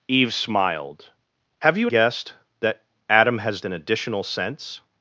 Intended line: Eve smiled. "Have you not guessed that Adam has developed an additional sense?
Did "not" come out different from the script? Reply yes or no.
yes